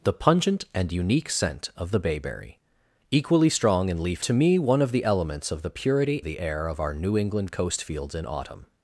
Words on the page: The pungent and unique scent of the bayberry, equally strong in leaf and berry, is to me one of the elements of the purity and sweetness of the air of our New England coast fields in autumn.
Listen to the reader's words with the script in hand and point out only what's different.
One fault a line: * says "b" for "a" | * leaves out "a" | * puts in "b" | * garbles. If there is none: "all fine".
* leaves out "and berry is"
* leaves out "and sweetness of"